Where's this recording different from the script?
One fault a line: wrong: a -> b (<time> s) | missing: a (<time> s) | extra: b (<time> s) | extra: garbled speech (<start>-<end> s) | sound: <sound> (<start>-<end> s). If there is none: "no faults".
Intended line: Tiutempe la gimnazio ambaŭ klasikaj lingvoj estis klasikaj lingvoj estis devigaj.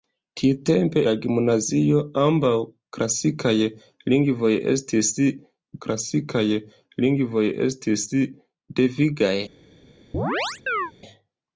sound: chirp (10.1-10.9 s)